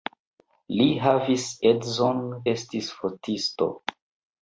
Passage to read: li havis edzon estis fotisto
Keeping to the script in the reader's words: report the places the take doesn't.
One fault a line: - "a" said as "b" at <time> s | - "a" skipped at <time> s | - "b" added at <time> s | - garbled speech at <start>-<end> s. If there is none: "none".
none